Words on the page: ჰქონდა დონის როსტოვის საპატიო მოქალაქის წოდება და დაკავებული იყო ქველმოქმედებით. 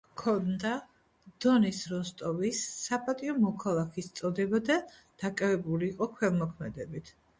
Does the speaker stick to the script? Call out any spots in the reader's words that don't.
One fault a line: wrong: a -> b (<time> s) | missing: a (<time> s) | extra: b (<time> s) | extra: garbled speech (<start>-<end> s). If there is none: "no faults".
no faults